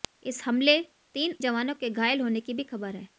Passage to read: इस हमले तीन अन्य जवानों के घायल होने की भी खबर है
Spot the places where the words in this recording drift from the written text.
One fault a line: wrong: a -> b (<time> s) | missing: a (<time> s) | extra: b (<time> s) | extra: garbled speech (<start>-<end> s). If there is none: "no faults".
missing: अन्य (1.4 s)